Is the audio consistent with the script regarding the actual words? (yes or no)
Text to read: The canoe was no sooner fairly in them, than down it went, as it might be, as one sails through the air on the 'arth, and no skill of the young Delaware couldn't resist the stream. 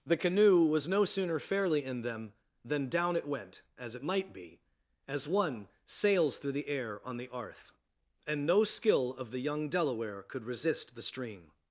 no